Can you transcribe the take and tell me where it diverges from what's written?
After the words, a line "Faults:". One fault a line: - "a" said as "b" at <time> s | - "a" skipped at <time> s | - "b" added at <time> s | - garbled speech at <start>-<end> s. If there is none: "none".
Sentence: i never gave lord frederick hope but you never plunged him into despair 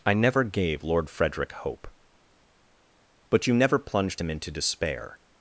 i never gave lord frederick hope but you never plunged him into despair
Faults:
none